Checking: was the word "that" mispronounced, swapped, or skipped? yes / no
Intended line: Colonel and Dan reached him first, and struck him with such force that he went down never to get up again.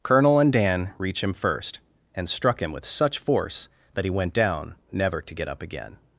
no